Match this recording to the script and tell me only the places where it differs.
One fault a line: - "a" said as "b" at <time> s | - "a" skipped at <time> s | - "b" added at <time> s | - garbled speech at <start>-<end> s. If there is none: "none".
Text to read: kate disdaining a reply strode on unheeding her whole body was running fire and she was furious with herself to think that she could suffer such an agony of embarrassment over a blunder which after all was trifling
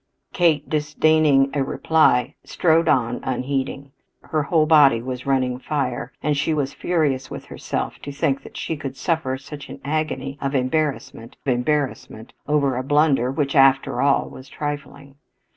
- "embarrassment" added at 11.5 s